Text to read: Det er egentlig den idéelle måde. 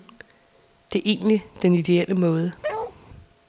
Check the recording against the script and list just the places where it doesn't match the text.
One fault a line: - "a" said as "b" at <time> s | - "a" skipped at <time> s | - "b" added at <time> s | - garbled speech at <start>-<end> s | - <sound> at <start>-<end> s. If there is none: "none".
- bark at 2.6-3.0 s